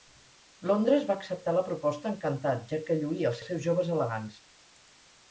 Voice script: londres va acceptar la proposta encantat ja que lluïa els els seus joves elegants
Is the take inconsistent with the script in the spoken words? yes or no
no